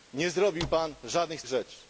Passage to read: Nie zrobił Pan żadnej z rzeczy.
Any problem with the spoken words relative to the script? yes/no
no